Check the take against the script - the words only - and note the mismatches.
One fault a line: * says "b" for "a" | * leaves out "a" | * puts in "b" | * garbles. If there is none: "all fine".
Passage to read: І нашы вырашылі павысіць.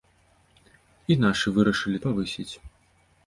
all fine